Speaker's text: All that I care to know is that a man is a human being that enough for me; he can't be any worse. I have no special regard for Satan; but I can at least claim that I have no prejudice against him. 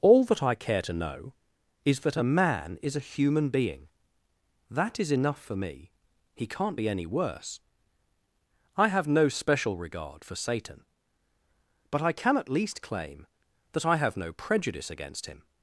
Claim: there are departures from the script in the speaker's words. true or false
true